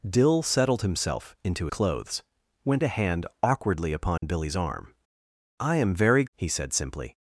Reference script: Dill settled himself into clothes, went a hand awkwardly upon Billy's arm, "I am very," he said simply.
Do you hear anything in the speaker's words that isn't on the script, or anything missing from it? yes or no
no